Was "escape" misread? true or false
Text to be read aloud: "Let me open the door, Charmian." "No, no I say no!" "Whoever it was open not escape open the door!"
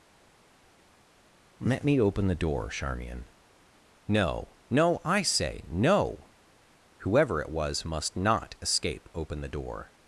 false